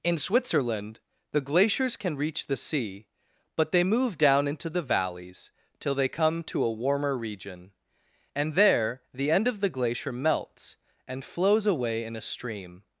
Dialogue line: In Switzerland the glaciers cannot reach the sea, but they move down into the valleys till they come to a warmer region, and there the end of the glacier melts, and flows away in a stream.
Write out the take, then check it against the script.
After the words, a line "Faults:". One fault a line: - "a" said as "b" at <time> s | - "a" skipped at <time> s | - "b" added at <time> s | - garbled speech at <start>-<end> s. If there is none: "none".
In Switzerland the glaciers can reach the sea, but they move down into the valleys till they come to a warmer region, and there the end of the glacier melts, and flows away in a stream.
Faults:
- "cannot" said as "can" at 1.9 s